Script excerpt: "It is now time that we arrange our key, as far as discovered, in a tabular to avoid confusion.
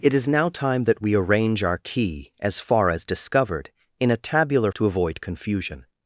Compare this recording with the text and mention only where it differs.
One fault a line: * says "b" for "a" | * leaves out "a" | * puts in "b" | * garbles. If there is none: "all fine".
all fine